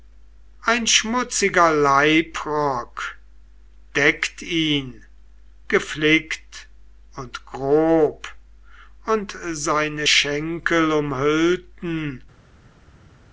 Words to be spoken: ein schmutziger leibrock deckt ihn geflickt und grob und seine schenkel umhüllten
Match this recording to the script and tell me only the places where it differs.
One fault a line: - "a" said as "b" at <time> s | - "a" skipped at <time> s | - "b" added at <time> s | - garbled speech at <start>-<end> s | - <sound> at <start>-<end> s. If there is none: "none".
none